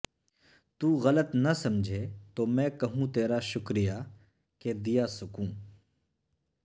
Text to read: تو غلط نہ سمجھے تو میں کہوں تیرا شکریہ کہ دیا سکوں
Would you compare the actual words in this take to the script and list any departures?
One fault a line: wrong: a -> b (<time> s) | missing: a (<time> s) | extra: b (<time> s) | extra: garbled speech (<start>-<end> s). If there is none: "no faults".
no faults